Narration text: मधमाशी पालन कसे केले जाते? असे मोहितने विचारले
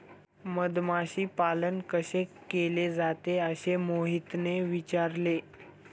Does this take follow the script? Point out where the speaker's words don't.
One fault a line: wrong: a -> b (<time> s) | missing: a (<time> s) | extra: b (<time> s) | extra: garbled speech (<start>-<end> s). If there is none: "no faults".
no faults